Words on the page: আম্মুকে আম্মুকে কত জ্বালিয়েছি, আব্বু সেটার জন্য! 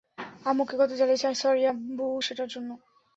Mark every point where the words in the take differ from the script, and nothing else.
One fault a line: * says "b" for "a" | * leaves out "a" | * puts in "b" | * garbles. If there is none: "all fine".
* leaves out "আম্মুকে"
* puts in "সরি"